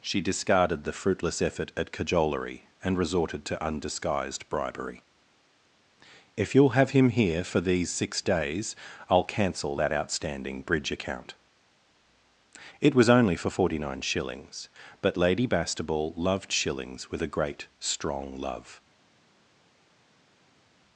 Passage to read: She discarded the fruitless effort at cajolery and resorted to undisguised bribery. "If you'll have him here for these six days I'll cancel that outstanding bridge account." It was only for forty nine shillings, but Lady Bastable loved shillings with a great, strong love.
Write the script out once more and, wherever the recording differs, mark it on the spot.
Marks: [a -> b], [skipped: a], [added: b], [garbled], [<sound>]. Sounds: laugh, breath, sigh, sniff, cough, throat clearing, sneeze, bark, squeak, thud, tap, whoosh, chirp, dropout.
She discarded the fruitless effort at cajolery and resorted to undisguised bribery. "If you'll have him here for these six days I'll cancel that outstanding bridge account." It was only for forty nine shillings, but Lady Bastable loved shillings with a great, strong love.